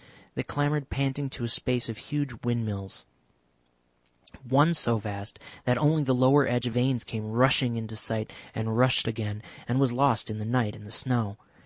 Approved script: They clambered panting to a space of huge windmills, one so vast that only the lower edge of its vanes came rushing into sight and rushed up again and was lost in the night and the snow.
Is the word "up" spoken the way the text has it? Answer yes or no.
no